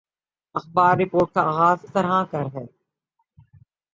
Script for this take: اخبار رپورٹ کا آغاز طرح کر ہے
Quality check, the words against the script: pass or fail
pass